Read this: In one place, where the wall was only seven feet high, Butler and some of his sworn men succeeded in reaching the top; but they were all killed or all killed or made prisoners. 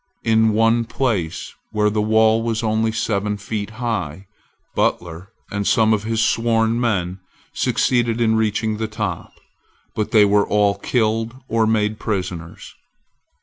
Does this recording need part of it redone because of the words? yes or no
yes